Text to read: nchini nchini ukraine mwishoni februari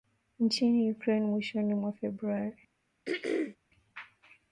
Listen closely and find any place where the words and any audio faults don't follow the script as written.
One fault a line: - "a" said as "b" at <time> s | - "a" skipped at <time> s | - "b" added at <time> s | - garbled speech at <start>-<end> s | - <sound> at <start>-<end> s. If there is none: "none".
- "nchini" skipped at 0.9 s
- "mwa" added at 1.7 s
- throat clearing at 3.0-3.6 s